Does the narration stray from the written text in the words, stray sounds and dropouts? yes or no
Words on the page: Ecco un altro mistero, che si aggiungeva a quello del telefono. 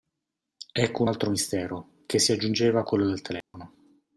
yes